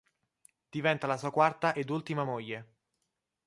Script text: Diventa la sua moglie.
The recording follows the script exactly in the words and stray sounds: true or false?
false